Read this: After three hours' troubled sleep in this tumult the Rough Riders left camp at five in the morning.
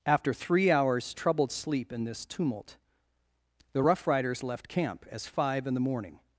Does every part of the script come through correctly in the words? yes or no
no